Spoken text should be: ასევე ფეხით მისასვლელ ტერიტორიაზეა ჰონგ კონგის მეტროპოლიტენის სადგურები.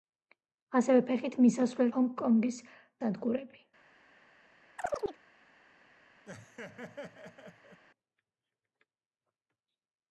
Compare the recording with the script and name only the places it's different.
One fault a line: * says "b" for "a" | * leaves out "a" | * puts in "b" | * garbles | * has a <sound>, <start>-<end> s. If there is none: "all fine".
* leaves out "ტერიტორიაზეა"
* leaves out "მეტროპოლიტენის"
* has a chirp, 4.8-5.2 s
* has a laugh, 6.3-7.8 s